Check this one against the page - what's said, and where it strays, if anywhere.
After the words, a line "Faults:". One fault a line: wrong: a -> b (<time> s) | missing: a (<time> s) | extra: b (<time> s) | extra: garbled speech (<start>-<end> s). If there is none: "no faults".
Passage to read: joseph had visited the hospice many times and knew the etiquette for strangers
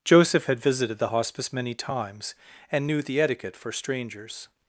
joseph had visited the hospice many times and knew the etiquette for strangers
Faults:
no faults